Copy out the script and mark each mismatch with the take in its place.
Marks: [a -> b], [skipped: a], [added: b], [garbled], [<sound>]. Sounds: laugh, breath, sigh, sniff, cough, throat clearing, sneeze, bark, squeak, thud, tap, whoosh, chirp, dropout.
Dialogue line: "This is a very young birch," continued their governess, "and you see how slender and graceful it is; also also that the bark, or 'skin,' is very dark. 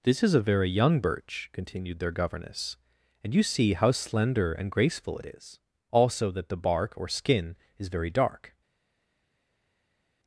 "This is a very young birch," continued their governess, "and you see how slender and graceful it is; also [skipped: also] that the bark, or 'skin,' is very dark.